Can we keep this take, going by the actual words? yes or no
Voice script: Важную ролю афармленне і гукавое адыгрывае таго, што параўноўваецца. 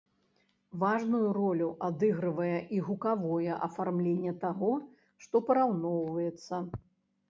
no